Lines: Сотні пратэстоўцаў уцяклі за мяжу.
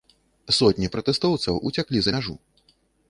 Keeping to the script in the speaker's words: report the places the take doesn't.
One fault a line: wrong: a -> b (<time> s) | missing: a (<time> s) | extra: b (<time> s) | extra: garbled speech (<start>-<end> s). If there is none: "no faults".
no faults